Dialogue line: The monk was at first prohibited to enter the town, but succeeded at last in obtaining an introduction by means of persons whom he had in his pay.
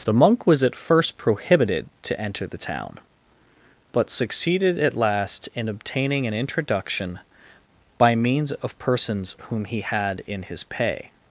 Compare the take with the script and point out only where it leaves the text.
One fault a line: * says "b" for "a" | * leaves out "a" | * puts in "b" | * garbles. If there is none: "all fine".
all fine